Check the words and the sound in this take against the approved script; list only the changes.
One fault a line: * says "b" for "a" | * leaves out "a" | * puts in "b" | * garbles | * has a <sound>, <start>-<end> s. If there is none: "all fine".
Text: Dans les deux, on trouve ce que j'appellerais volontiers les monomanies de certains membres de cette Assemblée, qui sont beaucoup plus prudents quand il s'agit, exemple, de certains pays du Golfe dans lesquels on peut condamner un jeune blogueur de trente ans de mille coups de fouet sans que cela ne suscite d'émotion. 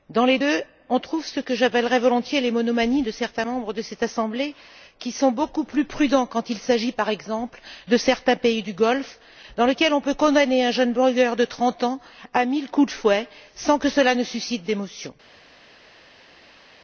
* puts in "par"
* says "à" for "de"